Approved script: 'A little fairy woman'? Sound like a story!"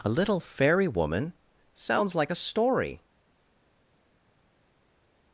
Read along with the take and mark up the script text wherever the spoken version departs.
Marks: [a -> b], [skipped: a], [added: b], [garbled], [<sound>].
'A little fairy woman'? [Sound -> Sounds] like a story!"